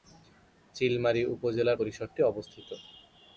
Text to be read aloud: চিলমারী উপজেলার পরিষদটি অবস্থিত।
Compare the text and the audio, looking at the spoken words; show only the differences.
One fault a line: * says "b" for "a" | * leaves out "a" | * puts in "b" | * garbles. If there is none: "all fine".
all fine